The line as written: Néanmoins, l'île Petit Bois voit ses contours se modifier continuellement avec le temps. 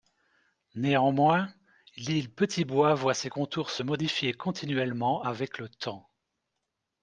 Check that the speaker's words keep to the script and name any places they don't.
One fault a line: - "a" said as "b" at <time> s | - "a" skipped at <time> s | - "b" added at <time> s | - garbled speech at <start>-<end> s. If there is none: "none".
none